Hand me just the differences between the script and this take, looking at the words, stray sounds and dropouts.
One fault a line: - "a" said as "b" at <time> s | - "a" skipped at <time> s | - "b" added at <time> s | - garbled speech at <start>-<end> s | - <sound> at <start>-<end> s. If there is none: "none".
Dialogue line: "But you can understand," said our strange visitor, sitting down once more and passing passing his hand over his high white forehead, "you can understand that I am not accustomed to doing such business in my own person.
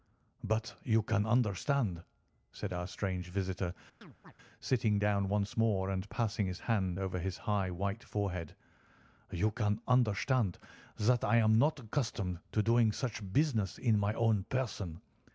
- chirp at 4.0-4.3 s
- "passing" skipped at 6.5 s